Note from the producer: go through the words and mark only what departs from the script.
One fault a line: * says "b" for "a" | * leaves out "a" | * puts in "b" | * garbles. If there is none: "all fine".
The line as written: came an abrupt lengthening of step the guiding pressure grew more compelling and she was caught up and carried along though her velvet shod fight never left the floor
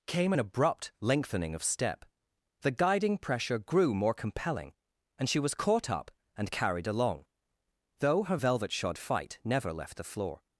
all fine